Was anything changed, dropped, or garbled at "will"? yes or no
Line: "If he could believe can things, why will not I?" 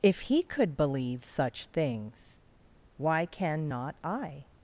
yes